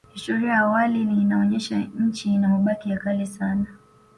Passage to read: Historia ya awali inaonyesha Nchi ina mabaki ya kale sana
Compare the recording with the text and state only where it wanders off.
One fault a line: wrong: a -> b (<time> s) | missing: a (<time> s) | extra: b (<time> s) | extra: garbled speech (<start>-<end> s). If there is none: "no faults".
no faults